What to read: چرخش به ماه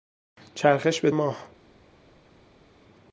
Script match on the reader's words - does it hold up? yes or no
yes